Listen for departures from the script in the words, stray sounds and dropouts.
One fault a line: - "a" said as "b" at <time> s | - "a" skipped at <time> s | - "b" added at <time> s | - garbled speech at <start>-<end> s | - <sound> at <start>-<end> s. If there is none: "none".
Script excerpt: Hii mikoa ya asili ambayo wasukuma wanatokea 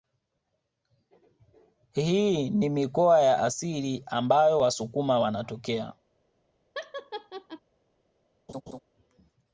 - "ni" added at 2.5 s
- laugh at 6.7-7.6 s
- laugh at 8.5-8.8 s